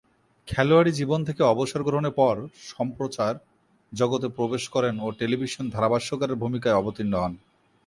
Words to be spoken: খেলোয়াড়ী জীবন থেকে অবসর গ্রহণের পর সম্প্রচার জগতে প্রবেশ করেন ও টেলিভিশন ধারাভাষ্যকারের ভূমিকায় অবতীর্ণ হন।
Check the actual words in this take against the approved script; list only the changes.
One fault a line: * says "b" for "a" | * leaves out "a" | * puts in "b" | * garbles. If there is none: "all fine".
all fine